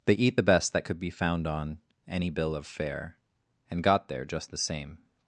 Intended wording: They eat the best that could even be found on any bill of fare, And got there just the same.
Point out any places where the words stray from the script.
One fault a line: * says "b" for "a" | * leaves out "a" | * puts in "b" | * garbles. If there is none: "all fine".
* leaves out "even"